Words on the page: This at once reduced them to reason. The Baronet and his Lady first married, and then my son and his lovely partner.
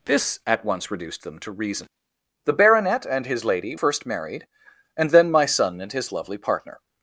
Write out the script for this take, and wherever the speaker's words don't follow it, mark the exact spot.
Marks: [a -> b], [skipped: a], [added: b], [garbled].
This at once reduced them to reason. The Baronet and his Lady first married, and then my son and his lovely partner.